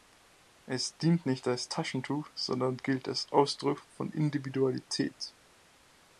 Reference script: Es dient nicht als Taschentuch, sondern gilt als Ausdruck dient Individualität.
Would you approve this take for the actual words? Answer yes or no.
no